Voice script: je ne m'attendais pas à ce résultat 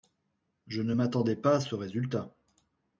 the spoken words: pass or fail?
pass